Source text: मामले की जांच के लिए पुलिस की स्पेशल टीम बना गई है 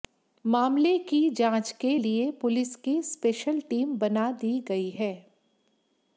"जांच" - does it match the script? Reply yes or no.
yes